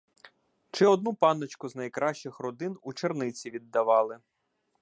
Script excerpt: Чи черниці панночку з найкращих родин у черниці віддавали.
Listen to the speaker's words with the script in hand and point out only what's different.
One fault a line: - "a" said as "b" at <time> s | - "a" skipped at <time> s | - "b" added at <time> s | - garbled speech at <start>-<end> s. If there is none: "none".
- "черниці" said as "одну" at 0.8 s